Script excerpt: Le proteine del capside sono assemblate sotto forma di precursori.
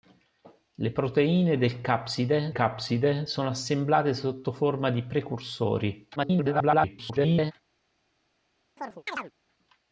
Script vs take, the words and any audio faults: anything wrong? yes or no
yes